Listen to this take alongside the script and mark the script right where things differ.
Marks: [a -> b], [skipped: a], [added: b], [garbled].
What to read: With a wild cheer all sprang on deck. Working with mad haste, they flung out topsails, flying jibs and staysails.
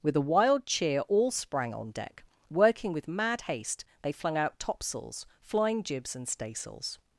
With a wild cheer all sprang on deck. Working with mad haste, they flung out topsails, flying jibs and staysails.